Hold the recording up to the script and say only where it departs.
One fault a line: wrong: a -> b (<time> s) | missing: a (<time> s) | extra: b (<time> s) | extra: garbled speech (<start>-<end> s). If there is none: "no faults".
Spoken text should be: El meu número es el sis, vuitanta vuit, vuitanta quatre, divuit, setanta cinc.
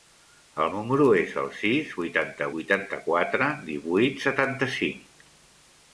missing: meu (0.7 s)
missing: vuit (2.5 s)